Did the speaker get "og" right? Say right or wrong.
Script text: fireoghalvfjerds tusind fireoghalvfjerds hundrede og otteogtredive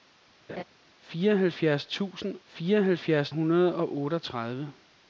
right